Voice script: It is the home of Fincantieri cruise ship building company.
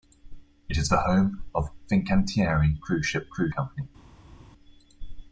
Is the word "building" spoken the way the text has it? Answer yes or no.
no